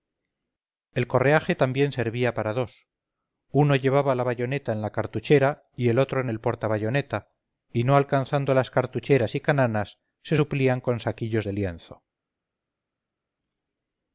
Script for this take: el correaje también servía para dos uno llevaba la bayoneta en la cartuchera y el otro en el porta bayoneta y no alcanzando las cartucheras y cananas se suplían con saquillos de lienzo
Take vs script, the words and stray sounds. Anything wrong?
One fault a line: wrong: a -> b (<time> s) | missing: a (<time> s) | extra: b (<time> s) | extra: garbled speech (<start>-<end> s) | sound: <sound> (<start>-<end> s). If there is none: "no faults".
no faults